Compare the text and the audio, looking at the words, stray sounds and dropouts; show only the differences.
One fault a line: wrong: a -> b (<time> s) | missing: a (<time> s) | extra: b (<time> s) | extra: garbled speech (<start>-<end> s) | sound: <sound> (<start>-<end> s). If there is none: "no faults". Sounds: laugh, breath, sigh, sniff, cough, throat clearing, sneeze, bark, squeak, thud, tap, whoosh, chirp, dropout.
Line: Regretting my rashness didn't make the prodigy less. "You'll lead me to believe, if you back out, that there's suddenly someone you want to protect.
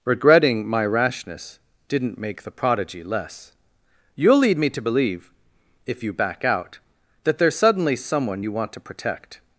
no faults